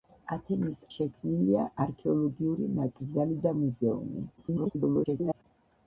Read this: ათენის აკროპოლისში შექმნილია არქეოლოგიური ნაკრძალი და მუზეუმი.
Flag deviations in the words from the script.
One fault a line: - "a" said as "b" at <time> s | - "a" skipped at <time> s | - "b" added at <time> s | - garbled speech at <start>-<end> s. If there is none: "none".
- "აკროპოლისში" skipped at 0.8 s
- garbled speech at 4.4-5.4 s